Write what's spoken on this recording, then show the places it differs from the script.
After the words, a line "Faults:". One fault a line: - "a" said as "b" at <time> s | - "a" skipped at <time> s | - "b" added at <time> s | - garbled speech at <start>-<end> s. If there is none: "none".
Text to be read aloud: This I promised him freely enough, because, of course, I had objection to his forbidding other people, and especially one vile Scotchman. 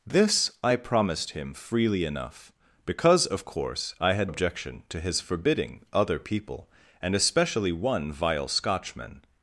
This I promised him freely enough, because, of course, I had objection to his forbidding other people, and especially one vile Scotchman.
Faults:
none